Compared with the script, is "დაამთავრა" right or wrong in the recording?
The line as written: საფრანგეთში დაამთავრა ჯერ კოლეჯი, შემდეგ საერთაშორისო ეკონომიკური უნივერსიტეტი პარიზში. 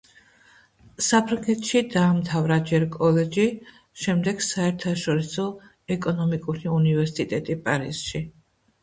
right